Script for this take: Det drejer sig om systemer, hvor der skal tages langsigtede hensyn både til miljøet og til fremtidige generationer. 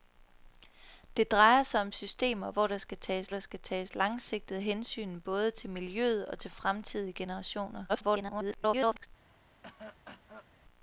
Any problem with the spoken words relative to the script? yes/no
yes